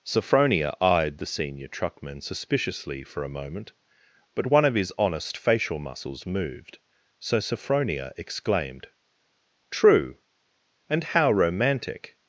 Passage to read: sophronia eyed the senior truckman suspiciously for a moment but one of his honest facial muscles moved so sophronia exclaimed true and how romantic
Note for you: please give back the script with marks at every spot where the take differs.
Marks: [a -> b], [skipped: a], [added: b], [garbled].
sophronia eyed the senior truckman suspiciously for a moment but one of his honest facial muscles moved so sophronia exclaimed true and how romantic